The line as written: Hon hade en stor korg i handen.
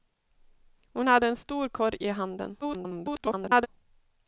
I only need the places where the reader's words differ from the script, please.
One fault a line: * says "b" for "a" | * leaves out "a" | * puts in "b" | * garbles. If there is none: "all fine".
* garbles